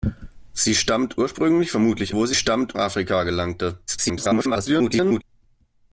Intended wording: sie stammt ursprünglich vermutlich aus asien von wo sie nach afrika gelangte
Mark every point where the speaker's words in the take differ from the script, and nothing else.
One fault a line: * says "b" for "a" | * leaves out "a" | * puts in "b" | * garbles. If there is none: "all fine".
* leaves out "aus asien von"
* says "stammt" for "nach"
* garbles